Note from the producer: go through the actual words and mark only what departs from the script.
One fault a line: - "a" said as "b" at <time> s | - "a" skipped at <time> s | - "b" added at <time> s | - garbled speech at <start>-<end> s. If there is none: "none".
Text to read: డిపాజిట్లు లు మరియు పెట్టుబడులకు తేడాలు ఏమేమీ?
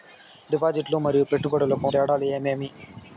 none